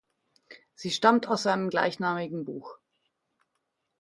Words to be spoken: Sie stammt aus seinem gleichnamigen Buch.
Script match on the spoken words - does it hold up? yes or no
yes